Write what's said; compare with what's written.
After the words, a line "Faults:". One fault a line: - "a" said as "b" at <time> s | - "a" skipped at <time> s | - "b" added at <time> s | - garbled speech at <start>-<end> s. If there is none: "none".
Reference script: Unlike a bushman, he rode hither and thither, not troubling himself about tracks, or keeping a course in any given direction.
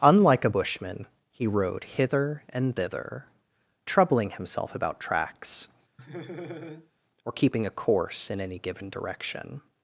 Unlike a bushman, he rode hither and thither, troubling himself about tracks, or keeping a course in any given direction.
Faults:
- "not" skipped at 3.2 s